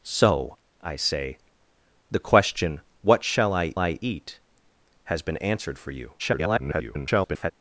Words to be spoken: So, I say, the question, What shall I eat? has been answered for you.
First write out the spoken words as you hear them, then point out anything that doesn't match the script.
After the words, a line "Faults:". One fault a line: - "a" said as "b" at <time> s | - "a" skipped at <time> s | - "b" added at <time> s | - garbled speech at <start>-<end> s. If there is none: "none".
So, I say, the question, What shall I I eat? has been answered for you. [garbled]
Faults:
- "I" added at 3.8 s
- garbled speech at 6.2-7.5 s